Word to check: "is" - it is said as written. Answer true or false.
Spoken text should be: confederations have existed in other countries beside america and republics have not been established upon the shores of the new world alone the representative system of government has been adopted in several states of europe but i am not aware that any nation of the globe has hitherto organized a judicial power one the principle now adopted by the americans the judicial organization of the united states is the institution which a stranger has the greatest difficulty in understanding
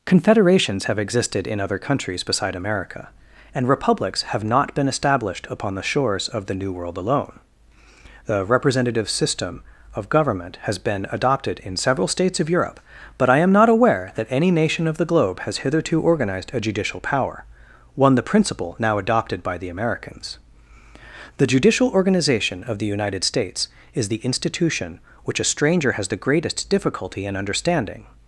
true